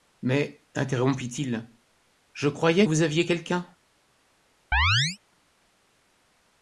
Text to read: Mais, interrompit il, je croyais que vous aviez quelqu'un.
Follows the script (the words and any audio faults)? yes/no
no